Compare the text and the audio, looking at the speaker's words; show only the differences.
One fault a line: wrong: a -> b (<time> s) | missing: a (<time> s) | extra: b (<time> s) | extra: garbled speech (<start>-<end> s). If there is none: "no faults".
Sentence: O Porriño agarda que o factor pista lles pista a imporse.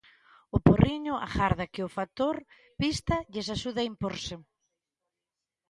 wrong: pista -> axude (3.5 s)